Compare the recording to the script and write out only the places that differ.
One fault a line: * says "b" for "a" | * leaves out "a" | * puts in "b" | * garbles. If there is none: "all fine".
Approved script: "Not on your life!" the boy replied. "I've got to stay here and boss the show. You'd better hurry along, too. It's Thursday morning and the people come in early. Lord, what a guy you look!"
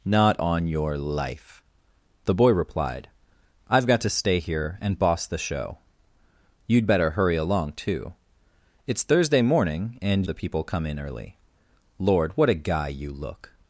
all fine